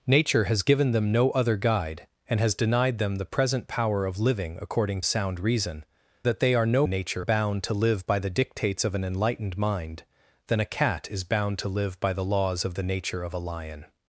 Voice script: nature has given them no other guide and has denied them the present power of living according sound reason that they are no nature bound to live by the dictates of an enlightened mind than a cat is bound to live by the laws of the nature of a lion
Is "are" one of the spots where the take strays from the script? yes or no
no